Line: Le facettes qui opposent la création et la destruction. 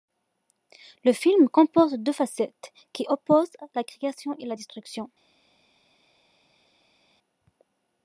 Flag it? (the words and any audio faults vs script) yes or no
yes